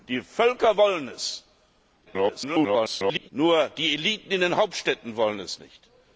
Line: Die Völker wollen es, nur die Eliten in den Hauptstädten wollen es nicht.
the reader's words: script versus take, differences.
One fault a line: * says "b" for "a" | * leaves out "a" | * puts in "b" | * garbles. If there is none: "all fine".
* garbles